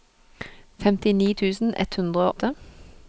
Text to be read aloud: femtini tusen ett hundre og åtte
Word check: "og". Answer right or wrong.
wrong